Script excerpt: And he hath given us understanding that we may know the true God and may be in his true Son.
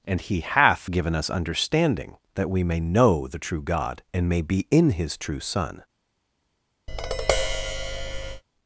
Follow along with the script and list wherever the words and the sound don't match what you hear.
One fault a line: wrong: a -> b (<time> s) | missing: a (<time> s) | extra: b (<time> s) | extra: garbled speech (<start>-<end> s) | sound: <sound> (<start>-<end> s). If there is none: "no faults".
sound: tap (6.9-8.4 s)